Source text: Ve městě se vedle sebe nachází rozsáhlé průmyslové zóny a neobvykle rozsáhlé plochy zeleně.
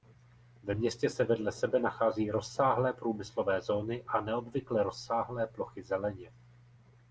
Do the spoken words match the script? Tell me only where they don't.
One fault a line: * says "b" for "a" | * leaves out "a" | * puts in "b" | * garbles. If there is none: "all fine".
all fine